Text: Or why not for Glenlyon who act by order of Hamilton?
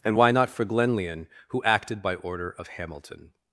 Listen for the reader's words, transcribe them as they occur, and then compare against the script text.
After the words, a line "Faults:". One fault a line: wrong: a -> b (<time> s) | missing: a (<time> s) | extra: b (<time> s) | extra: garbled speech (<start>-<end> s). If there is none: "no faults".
And why not for Glenlyon who acted by order of Hamilton?
Faults:
wrong: Or -> And (0.0 s)
wrong: act -> acted (1.6 s)